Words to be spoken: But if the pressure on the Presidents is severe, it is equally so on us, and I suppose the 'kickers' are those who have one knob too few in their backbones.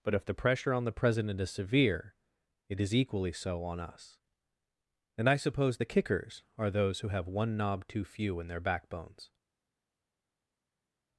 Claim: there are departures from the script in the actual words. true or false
true